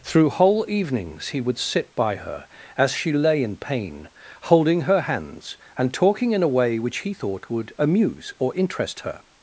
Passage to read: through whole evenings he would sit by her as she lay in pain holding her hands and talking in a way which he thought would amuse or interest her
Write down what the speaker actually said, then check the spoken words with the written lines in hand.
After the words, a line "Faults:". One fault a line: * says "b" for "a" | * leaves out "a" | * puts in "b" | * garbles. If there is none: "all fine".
through whole evenings he would sit by her as she lay in pain holding her hands and talking in a way which he thought would amuse or interest her
Faults:
all fine